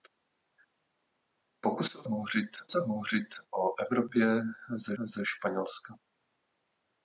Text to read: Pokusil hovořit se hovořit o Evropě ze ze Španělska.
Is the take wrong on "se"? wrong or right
right